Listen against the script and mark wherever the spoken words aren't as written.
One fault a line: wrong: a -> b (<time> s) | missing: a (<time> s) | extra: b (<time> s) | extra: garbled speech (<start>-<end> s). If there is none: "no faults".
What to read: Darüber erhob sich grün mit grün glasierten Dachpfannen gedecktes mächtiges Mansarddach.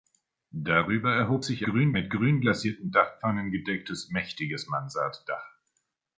no faults